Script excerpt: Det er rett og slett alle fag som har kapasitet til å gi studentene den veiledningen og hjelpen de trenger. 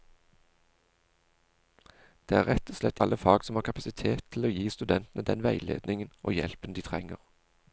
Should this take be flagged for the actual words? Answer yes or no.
no